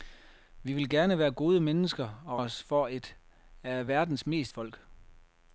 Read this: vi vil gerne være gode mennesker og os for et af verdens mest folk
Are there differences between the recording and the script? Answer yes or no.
no